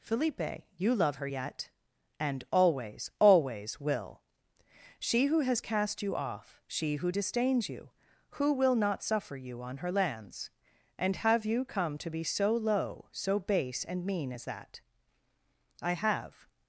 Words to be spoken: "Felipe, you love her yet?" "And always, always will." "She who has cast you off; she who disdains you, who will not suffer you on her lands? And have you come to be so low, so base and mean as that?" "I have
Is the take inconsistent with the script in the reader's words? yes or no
no